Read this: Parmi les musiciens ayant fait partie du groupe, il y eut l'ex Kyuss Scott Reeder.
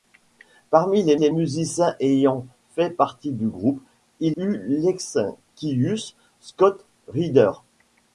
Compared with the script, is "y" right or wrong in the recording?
wrong